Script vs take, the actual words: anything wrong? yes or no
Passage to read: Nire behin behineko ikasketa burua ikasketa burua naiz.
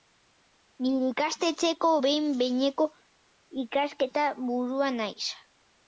yes